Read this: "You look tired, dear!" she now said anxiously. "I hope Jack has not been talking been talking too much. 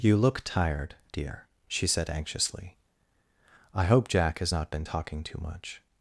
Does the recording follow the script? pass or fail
fail